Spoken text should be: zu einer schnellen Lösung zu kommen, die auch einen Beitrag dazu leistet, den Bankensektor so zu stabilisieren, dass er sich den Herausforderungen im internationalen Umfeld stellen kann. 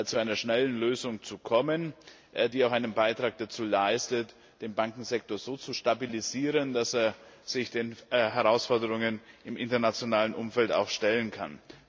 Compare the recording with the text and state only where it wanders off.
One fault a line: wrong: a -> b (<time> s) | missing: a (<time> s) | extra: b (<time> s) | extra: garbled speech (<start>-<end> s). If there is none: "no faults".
no faults